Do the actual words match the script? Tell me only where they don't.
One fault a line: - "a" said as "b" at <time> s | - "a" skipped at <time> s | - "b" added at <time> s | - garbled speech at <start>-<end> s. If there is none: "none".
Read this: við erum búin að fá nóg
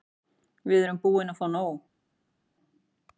none